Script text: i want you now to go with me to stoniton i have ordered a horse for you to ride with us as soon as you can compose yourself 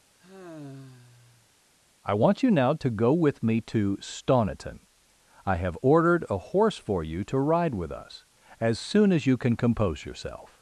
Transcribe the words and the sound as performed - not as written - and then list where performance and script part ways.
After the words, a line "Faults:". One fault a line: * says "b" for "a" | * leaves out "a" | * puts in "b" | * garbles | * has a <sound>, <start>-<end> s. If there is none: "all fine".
i want you now to go with me to stoniton i have ordered a horse for you to ride with us as soon as you can compose yourself
Faults:
* has a sigh, 0.2-1.5 s